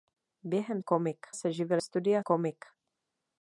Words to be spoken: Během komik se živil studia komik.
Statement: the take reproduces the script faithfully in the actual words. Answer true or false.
true